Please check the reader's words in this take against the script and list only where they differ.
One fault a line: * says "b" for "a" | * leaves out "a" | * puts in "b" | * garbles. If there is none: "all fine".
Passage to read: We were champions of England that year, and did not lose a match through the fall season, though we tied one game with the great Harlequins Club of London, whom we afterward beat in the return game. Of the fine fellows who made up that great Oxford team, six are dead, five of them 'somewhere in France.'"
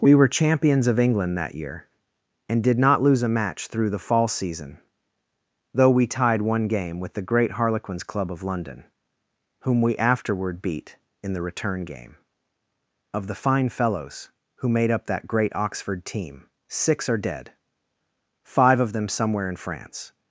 all fine